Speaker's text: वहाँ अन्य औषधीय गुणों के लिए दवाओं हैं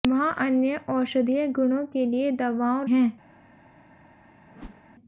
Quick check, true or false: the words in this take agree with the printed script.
true